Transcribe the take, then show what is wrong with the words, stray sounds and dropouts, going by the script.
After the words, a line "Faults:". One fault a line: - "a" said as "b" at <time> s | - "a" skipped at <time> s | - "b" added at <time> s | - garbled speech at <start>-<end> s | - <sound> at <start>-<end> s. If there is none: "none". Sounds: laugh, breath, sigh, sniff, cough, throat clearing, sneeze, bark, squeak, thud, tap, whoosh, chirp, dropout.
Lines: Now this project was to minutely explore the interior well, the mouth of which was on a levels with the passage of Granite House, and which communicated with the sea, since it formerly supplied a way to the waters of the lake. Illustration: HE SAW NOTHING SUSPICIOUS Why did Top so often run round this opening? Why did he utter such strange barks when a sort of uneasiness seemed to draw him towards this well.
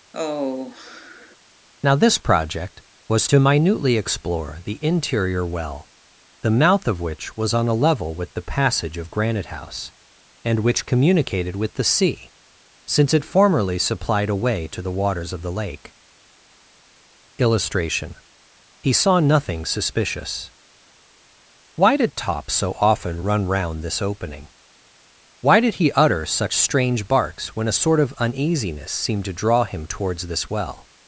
Now this project was to minutely explore the interior well, the mouth of which was on a level with the passage of Granite House, and which communicated with the sea, since it formerly supplied a way to the waters of the lake. Illustration: HE SAW NOTHING SUSPICIOUS Why did Top so often run round this opening? Why did he utter such strange barks when a sort of uneasiness seemed to draw him towards this well.
Faults:
- sigh at 0.1-1.4 s
- "levels" said as "level" at 7.7 s